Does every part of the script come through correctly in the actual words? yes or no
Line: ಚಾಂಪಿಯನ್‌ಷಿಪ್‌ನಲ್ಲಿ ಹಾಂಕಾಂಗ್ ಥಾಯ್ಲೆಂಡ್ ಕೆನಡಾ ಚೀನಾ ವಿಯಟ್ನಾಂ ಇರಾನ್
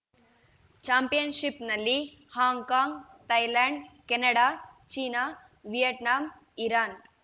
yes